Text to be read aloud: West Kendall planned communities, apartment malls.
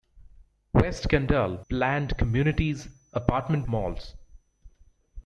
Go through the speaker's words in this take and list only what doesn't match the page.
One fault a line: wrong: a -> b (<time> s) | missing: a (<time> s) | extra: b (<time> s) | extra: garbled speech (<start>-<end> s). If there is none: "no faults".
no faults